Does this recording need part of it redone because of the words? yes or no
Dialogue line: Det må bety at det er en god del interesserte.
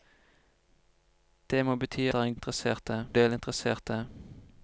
yes